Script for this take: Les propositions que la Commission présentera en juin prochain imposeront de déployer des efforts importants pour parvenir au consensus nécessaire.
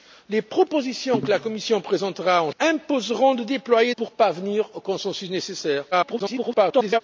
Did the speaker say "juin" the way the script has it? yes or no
no